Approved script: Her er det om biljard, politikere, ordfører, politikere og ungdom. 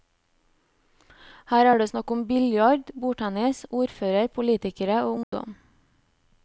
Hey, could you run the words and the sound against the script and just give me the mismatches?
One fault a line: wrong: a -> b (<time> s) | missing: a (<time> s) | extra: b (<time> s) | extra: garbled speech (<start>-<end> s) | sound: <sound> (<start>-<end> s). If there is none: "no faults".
extra: snakk (1.9 s)
wrong: politikere -> bordtennis (3.0 s)
sound: dropout (5.2-5.3 s)